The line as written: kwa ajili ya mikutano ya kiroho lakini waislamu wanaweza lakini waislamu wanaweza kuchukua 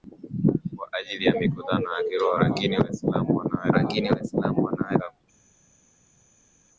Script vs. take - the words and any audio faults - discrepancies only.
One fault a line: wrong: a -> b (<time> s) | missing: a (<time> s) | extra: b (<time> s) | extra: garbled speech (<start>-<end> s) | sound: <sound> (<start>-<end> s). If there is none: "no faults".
no faults